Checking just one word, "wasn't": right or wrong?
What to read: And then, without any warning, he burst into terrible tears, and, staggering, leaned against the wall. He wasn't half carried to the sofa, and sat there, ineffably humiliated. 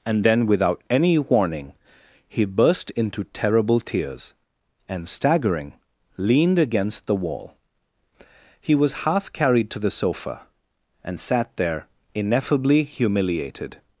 wrong